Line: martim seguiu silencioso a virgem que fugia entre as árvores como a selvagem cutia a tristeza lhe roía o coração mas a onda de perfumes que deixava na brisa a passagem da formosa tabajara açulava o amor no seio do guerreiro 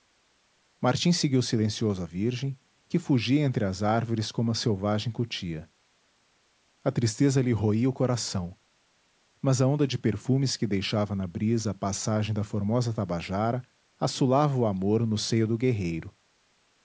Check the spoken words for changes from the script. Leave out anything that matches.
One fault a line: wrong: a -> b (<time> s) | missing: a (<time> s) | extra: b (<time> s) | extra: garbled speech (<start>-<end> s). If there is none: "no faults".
no faults